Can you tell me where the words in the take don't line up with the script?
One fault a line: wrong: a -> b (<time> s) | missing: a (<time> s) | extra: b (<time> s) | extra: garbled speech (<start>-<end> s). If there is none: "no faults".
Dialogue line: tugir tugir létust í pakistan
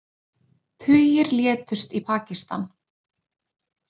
missing: tugir (1.3 s)